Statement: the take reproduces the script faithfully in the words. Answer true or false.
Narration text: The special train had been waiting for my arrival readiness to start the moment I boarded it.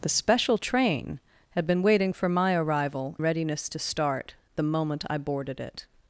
true